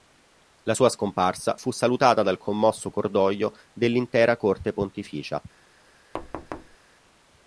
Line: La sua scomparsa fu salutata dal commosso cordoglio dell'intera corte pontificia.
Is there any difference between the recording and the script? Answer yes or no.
no